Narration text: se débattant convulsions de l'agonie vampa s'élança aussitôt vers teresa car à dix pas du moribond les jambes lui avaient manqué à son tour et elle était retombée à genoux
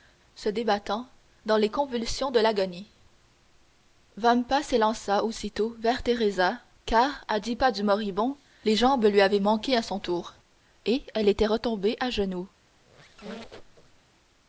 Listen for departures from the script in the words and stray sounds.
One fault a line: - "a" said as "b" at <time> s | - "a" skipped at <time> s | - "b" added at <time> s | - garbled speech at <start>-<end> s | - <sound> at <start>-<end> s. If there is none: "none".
- "dans les" added at 1.4 s
- squeak at 12.7-14.0 s